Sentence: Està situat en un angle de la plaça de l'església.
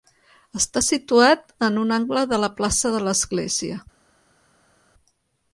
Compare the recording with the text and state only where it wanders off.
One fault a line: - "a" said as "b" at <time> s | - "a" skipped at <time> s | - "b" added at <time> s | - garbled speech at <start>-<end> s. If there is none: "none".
none